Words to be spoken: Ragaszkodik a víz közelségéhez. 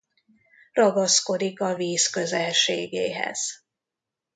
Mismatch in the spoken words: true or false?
false